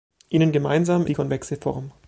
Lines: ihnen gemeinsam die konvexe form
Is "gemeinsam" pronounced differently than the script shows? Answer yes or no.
no